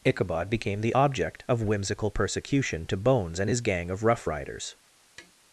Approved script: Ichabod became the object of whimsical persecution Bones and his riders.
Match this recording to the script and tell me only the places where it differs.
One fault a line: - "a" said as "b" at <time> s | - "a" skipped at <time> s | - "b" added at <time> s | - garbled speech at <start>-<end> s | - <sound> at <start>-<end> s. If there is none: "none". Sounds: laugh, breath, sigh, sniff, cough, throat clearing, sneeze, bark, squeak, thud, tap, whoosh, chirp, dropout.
- "to" added at 2.9 s
- "gang of rough" added at 3.6 s
- tap at 5.2-5.3 s